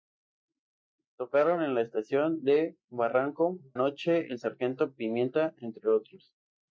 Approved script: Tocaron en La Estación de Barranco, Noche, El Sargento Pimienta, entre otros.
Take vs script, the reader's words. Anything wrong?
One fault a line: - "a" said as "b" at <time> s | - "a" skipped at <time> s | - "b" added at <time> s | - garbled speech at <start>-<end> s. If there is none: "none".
none